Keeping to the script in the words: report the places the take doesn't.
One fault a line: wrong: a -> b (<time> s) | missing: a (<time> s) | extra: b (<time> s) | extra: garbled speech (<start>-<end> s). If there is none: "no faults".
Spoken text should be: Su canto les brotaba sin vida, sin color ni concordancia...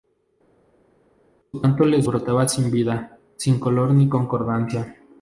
no faults